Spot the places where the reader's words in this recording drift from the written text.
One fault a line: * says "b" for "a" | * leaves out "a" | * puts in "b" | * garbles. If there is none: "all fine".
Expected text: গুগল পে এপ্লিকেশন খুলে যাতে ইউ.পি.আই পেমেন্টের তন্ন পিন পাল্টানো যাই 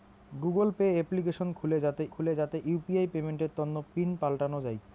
* puts in "খুলে যাতে"